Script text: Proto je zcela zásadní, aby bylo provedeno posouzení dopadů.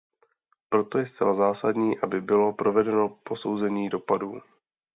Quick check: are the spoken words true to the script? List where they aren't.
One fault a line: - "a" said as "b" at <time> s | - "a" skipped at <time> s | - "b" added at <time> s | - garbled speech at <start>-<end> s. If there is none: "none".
none